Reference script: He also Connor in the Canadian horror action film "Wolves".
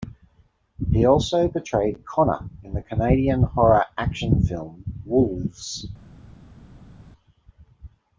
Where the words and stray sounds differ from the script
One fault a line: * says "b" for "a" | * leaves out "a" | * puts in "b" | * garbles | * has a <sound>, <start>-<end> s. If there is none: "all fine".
* puts in "portrayed"